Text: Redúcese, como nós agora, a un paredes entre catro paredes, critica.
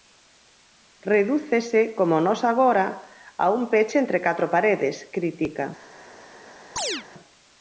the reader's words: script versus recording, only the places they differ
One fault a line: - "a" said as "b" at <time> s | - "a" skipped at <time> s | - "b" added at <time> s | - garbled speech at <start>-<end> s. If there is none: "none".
- "paredes" said as "peche" at 3.7 s